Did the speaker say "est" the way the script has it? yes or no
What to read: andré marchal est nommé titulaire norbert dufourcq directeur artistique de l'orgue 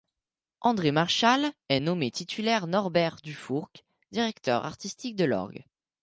yes